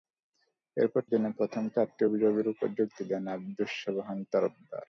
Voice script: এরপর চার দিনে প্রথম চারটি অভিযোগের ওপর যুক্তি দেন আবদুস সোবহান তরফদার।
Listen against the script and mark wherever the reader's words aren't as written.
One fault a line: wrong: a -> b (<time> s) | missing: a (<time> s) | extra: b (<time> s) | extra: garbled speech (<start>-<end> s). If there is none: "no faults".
missing: চার (1.0 s)